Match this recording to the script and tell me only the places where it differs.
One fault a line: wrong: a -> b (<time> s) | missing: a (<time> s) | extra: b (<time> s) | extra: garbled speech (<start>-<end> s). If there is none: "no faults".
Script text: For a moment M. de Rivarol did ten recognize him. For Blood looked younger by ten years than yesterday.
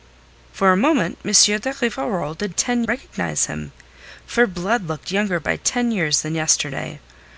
no faults